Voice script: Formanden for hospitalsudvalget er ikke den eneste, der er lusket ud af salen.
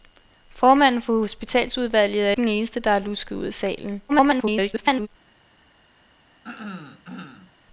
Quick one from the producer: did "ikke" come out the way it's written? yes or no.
no